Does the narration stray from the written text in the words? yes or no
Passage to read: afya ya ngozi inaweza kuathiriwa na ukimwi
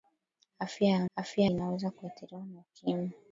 yes